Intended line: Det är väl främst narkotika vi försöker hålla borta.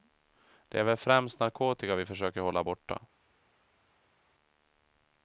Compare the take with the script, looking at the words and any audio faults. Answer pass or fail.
pass